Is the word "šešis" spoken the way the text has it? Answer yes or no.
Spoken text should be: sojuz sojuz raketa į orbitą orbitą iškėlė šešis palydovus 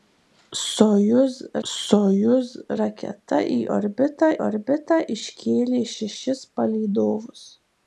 yes